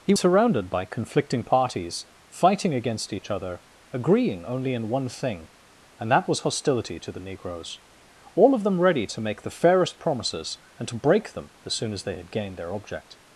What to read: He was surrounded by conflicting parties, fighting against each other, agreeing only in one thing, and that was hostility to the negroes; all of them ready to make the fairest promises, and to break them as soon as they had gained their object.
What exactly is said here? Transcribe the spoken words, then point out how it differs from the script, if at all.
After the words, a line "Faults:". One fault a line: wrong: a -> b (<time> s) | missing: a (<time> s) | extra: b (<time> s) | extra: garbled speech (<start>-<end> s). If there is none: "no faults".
He surrounded by conflicting parties, fighting against each other, agreeing only in one thing, and that was hostility to the negroes; all of them ready to make the fairest promises, and to break them as soon as they had gained their object.
Faults:
missing: was (0.1 s)